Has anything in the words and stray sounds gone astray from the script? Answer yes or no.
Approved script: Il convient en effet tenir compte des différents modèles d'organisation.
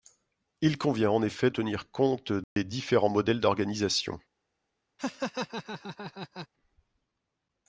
yes